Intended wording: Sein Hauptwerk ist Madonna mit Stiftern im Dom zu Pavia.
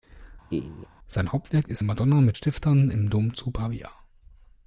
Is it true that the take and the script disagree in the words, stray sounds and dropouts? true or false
true